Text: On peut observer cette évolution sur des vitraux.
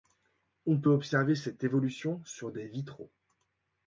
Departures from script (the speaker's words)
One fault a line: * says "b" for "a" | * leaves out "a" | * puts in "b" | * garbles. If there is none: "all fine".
all fine